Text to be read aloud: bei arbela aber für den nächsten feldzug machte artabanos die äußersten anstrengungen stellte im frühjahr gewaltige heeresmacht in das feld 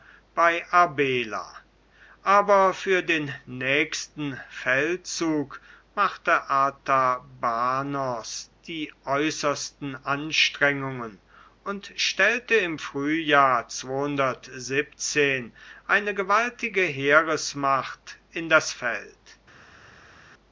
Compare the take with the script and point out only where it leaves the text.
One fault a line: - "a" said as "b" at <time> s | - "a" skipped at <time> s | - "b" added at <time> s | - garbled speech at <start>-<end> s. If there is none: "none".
- "und" added at 11.7 s
- "eine" added at 15.9 s